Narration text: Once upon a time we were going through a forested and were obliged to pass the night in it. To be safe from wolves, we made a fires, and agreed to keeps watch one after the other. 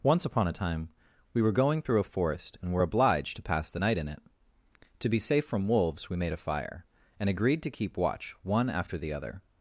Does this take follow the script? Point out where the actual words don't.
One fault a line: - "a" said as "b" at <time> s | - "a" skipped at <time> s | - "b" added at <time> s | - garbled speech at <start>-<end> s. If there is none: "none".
- "forested" said as "forest" at 2.0 s
- "fires" said as "fire" at 6.4 s
- "keeps" said as "keep" at 7.7 s